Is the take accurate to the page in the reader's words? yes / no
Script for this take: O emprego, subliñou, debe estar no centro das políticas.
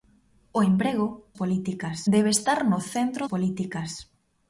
no